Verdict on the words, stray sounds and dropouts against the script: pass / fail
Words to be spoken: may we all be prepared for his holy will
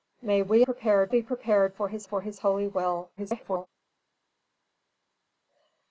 fail